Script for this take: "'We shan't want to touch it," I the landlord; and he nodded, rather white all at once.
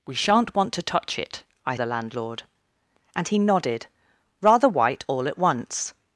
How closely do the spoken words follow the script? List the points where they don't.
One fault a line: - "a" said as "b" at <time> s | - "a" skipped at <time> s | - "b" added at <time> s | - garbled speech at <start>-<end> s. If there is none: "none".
none